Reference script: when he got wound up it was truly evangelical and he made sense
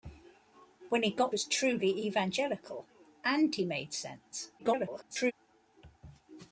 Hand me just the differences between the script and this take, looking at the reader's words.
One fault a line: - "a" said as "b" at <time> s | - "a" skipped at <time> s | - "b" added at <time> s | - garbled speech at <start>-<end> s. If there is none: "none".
- "wound up it" skipped at 1.4 s
- garbled speech at 4.6-5.3 s